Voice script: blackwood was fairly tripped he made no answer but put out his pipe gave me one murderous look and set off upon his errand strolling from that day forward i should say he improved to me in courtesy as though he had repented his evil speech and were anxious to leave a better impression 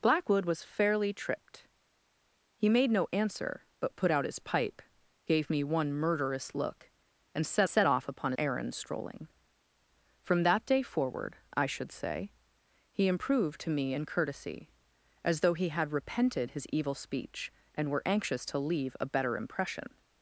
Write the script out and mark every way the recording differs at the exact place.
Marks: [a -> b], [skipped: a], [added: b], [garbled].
blackwood was fairly tripped he made no answer but put out his pipe gave me one murderous look and set [added: set] off upon [skipped: his] errand strolling from that day forward i should say he improved to me in courtesy as though he had repented his evil speech and were anxious to leave a better impression